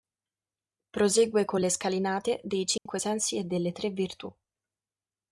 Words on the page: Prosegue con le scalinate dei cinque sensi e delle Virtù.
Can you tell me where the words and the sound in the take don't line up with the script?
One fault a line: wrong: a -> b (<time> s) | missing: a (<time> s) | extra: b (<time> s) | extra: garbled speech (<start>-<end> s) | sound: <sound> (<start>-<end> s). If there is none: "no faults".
sound: dropout (2.8-2.9 s)
extra: Tre (3.7 s)